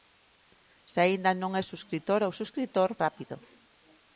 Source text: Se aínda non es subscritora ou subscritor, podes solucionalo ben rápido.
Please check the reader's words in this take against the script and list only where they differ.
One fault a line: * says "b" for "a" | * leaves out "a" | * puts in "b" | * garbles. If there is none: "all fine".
* leaves out "podes solucionalo ben"